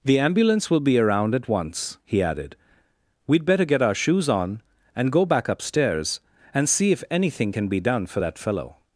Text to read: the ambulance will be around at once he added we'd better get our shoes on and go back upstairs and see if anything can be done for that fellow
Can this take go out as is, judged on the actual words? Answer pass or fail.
pass